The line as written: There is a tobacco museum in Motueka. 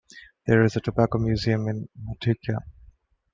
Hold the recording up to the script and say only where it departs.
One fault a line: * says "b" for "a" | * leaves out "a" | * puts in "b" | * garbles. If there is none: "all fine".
all fine